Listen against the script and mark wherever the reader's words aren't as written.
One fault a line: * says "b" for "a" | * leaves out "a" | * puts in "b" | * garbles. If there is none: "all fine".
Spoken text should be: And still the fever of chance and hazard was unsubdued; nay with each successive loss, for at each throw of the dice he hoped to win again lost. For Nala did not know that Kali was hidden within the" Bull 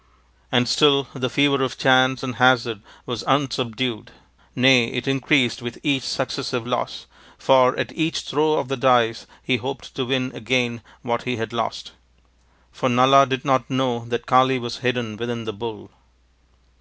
* puts in "it increased"
* puts in "what he had"